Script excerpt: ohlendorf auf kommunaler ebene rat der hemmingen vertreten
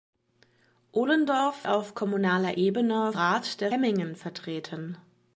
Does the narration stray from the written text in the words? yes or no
no